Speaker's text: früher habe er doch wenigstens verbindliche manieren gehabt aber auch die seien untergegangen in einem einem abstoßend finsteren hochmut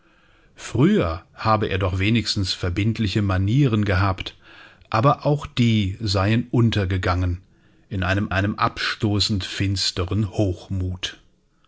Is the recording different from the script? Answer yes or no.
no